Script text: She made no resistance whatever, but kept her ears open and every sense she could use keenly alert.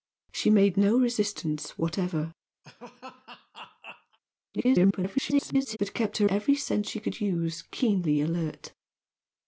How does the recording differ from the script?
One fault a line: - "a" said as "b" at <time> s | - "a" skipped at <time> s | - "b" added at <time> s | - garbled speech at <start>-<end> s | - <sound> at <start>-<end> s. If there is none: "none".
- laugh at 2.6-4.2 s
- garbled speech at 4.5-5.8 s
- "ears open and" skipped at 6.3 s